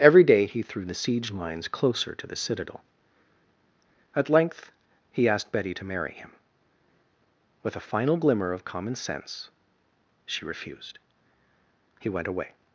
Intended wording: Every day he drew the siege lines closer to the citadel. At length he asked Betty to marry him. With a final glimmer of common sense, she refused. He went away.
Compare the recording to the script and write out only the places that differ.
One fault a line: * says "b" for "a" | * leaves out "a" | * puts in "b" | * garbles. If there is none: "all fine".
* says "threw" for "drew"